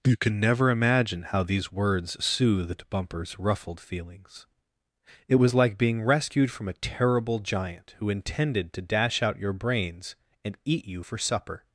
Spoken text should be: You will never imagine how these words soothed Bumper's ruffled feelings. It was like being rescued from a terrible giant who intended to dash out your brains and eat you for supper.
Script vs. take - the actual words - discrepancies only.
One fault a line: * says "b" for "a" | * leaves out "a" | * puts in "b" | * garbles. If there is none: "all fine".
* says "can" for "will"